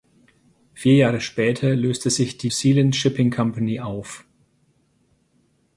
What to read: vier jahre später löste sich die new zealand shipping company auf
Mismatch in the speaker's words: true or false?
true